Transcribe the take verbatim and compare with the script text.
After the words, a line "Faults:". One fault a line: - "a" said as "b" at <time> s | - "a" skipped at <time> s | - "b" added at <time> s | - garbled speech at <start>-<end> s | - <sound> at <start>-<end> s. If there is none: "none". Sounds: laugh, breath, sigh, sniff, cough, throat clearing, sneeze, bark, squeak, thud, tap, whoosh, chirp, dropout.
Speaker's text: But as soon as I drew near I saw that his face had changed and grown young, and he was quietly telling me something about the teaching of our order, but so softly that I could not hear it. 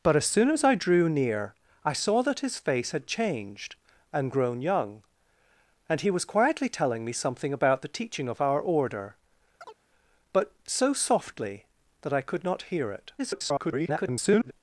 But as soon as I drew near I saw that his face had changed and grown young, and he was quietly telling me something about the teaching of our order, but so softly that I could not hear it. [garbled]
Faults:
- chirp at 9.6-9.8 s
- garbled speech at 13.2-14.5 s